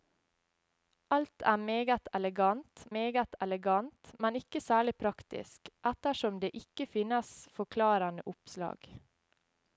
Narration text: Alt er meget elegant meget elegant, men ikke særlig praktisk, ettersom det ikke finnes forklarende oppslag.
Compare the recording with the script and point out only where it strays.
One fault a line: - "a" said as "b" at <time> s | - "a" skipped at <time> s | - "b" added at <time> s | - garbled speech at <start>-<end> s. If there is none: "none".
none